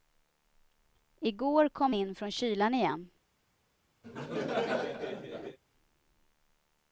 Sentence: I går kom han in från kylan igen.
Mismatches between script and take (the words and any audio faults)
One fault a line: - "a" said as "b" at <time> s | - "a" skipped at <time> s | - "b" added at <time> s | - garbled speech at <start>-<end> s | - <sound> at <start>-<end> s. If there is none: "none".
- "han" skipped at 1.9 s
- laugh at 4.0-5.6 s